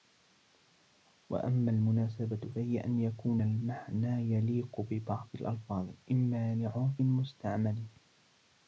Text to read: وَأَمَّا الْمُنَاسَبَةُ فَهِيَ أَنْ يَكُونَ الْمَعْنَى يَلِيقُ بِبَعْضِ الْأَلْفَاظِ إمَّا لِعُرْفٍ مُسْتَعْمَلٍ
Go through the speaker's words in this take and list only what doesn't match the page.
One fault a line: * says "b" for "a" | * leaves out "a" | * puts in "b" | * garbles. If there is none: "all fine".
all fine